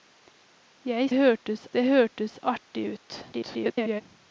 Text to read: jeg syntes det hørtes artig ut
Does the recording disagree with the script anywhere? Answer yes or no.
yes